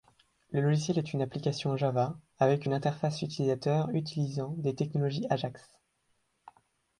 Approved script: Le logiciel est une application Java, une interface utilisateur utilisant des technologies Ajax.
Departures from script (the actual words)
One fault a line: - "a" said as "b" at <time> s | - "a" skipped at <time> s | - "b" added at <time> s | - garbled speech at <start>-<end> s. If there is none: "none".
- "avec" added at 2.4 s